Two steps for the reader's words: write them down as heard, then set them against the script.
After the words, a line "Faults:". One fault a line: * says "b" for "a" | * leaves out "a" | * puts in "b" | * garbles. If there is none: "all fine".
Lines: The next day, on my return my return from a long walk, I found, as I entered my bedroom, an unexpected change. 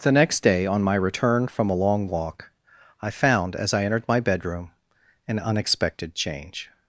The next day, on my return from a long walk, I found, as I entered my bedroom, an unexpected change.
Faults:
* leaves out "my return"